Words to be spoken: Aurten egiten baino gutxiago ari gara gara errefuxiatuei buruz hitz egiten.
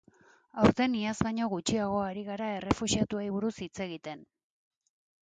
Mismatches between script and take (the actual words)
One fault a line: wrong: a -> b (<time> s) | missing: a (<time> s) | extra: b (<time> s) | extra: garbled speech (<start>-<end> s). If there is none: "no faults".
wrong: egiten -> iaz (1.0 s)
missing: gara (2.5 s)